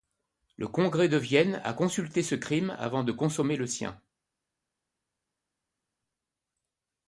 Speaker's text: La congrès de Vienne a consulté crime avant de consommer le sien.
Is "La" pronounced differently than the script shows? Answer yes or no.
yes